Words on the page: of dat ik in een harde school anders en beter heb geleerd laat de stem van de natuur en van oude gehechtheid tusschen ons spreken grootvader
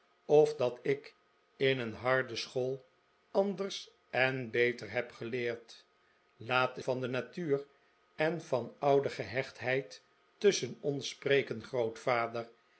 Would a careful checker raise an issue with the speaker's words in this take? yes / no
yes